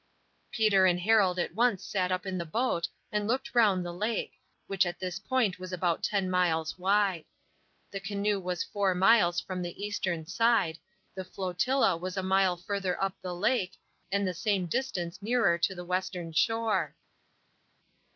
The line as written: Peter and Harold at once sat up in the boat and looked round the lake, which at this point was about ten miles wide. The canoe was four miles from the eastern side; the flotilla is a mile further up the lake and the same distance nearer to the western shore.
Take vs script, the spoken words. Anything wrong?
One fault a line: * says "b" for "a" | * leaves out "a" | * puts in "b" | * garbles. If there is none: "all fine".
* says "was" for "is"